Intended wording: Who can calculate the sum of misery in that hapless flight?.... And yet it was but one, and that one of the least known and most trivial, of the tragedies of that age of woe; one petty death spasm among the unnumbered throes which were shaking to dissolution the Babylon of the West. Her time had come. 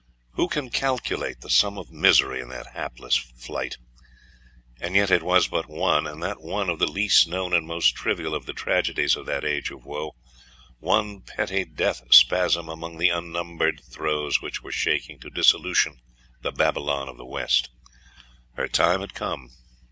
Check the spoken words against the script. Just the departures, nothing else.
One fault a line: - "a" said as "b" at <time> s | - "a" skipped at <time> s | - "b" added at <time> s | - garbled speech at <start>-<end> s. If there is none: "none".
none